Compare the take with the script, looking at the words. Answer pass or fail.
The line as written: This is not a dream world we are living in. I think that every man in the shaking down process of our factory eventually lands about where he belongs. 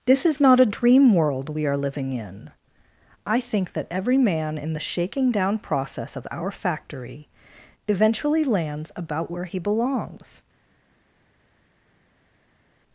pass